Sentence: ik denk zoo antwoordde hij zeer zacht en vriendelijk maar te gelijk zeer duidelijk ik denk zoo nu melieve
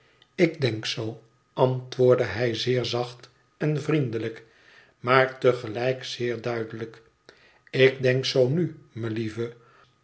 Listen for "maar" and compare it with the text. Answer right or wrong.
right